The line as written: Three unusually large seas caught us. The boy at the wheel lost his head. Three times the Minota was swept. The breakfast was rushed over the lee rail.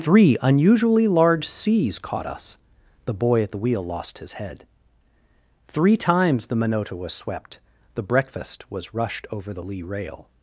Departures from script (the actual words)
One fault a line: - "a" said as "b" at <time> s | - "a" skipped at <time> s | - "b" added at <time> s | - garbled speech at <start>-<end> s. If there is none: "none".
none